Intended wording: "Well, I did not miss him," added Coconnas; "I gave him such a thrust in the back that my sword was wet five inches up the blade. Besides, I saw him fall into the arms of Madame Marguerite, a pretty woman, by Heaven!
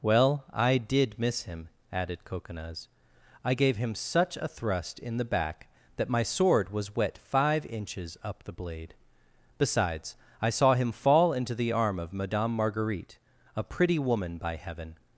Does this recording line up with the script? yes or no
no